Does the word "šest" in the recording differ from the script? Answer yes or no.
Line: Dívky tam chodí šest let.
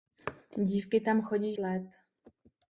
yes